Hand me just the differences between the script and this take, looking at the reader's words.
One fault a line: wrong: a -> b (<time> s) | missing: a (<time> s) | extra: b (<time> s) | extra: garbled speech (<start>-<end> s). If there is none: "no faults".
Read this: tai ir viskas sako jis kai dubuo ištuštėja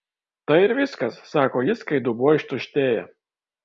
no faults